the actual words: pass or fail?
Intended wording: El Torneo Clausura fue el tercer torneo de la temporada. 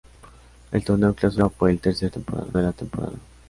fail